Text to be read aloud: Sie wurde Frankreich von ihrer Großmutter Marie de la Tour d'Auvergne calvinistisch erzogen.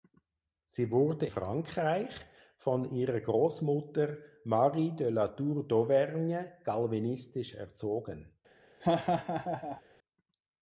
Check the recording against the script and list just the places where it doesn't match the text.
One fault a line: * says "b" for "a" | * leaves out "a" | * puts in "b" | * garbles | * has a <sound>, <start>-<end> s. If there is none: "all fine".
* has a laugh, 8.8-9.8 s